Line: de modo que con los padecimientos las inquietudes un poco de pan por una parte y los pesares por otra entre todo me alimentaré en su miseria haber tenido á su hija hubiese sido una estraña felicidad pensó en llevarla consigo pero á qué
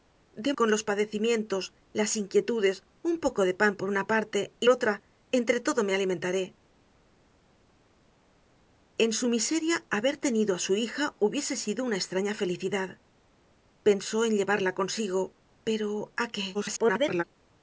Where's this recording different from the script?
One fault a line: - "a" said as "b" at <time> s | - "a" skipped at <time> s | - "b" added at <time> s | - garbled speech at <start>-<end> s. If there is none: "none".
- "modo que" skipped at 0.5 s
- "los pesares por" skipped at 4.7 s
- garbled speech at 16.5-17.2 s